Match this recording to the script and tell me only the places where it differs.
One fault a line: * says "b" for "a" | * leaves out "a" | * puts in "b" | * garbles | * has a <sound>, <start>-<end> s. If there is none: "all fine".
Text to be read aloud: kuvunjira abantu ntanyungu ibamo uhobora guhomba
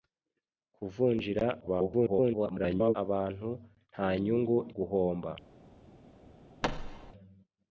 * garbles
* leaves out "ibamo uhobora"
* has a thud, 6.6-7.1 s